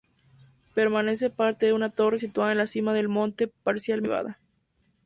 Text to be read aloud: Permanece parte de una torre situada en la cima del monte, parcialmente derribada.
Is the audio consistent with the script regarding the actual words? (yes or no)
yes